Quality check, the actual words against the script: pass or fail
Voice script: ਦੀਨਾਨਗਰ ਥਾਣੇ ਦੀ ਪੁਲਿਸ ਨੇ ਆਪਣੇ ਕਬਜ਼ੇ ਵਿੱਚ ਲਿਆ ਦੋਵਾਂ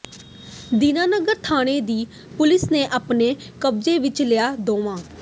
pass